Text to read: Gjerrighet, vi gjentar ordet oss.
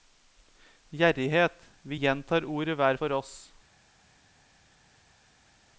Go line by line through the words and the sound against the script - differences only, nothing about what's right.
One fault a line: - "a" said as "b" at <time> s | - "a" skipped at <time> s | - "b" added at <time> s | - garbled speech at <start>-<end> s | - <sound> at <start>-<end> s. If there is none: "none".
- "hver for" added at 2.8 s